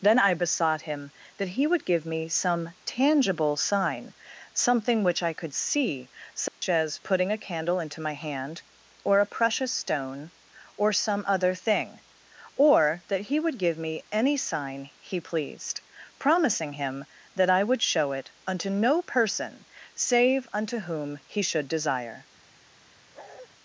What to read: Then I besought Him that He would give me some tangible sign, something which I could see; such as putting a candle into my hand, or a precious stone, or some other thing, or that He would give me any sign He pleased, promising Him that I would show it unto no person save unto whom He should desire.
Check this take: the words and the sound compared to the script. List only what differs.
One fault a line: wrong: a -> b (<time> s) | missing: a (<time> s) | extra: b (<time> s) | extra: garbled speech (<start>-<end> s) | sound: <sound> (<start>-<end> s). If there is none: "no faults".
sound: dropout (6.5-6.6 s)
sound: bark (23.1-23.5 s)